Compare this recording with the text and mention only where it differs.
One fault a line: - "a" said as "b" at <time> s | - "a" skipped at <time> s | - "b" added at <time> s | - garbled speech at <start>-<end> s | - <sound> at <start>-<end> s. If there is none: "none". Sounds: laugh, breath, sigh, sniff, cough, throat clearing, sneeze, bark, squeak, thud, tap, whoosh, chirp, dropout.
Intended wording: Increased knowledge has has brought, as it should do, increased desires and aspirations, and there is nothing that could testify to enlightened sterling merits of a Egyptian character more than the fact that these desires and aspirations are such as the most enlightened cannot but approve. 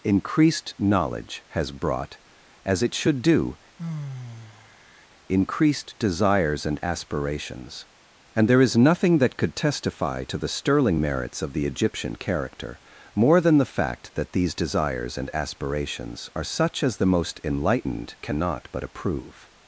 - "has" skipped at 1.7 s
- sigh at 3.8-5.1 s
- "enlightened" said as "the" at 10.4 s
- "a" said as "the" at 11.5 s